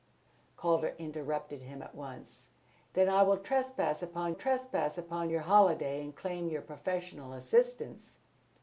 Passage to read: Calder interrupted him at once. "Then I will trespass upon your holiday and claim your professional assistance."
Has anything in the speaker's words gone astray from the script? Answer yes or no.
yes